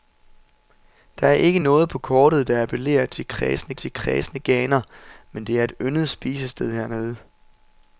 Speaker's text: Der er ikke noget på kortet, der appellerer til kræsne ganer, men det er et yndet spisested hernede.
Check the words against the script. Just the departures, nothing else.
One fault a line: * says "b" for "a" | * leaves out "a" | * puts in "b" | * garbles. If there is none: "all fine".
* puts in "til kræsne"